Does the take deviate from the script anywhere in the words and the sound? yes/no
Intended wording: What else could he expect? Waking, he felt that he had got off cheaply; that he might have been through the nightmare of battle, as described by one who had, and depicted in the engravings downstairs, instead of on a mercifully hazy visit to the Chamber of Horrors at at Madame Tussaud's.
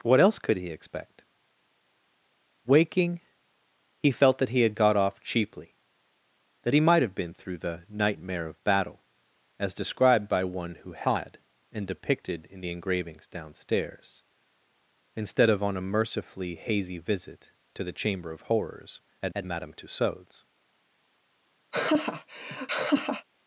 yes